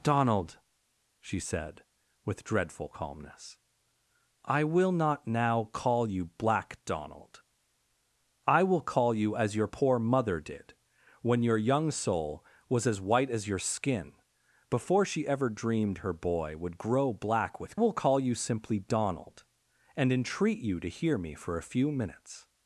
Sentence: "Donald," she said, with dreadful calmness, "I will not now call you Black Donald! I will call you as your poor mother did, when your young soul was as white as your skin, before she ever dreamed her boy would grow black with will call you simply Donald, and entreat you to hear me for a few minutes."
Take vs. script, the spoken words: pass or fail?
pass